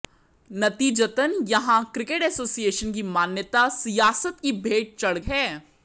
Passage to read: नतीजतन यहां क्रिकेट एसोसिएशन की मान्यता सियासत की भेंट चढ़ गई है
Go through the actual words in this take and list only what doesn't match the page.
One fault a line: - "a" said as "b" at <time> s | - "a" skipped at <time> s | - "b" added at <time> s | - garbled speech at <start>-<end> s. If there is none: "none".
- "गई" skipped at 5.2 s